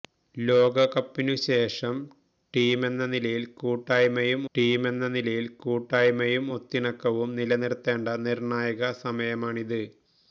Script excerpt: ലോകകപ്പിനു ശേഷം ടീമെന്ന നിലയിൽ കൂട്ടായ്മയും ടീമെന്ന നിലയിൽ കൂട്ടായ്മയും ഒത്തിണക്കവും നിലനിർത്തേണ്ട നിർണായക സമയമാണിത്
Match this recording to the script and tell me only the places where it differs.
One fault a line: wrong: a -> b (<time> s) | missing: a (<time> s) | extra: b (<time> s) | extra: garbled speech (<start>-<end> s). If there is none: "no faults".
no faults